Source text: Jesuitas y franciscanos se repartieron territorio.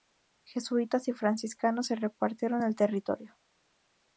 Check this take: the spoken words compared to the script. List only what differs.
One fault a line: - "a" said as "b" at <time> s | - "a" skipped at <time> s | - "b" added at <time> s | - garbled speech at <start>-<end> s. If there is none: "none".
- "el" added at 2.6 s